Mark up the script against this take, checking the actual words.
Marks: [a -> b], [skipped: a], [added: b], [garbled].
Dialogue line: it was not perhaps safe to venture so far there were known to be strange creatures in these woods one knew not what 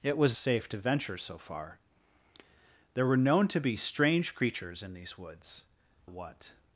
it was [skipped: not perhaps] safe to venture so far there were known to be strange creatures in these woods [skipped: one knew not] what